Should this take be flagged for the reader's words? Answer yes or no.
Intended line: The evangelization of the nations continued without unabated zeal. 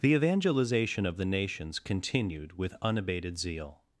yes